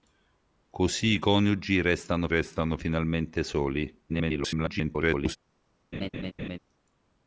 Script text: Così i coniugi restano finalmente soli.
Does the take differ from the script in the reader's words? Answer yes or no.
yes